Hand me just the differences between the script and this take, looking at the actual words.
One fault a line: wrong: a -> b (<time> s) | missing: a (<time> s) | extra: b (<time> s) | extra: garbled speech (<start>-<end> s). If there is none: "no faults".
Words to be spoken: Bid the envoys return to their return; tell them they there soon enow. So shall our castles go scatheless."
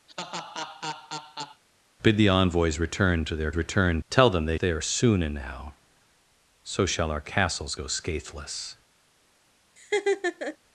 no faults